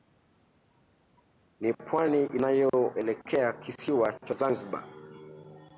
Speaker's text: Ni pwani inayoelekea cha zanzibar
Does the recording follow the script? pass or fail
fail